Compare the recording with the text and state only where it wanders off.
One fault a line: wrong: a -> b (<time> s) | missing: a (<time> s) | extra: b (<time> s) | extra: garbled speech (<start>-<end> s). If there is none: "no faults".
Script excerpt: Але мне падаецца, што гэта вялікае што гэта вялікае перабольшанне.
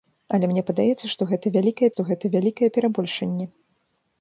no faults